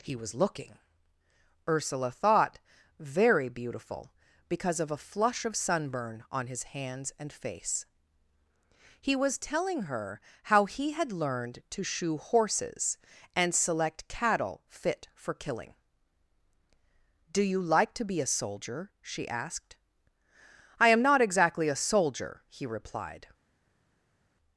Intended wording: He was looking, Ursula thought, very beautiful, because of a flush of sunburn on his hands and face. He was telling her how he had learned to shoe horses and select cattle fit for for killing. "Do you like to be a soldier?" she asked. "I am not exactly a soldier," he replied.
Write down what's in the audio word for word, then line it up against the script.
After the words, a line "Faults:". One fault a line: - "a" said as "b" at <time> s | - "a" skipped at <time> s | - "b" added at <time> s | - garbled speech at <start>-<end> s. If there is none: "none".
He was looking, Ursula thought, very beautiful, because of a flush of sunburn on his hands and face. He was telling her how he had learned to shoe horses and select cattle fit for killing. "Do you like to be a soldier?" she asked. "I am not exactly a soldier," he replied.
Faults:
- "for" skipped at 15.3 s